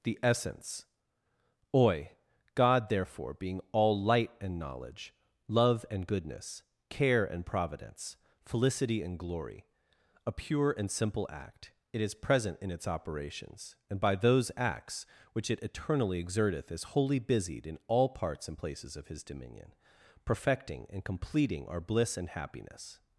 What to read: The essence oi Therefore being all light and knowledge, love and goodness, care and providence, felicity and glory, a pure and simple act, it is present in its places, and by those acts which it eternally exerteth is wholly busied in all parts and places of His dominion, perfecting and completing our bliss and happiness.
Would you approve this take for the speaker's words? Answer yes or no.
no